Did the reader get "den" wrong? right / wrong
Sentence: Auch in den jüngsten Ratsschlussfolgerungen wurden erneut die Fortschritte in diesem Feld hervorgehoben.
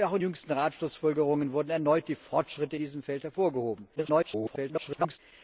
wrong